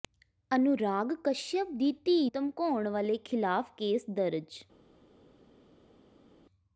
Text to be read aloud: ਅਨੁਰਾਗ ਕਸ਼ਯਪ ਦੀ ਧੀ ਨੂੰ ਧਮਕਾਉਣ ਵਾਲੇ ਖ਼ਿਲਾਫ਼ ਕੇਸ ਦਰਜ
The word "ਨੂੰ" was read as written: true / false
false